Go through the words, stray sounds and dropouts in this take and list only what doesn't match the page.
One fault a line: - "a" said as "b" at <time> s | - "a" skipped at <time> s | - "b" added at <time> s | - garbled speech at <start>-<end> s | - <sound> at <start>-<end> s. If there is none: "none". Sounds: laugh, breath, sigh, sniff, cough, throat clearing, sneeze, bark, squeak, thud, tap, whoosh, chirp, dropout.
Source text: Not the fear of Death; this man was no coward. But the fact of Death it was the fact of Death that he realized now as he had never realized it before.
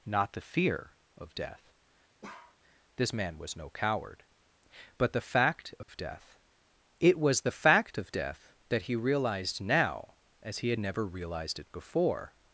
- bark at 2.2-2.6 s
- dropout at 5.8-5.9 s